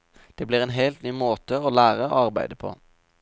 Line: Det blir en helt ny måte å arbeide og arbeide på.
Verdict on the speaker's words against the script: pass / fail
fail